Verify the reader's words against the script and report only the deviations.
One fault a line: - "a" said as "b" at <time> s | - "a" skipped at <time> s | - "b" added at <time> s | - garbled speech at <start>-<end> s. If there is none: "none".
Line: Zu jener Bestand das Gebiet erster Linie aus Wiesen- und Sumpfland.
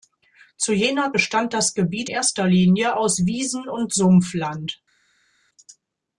none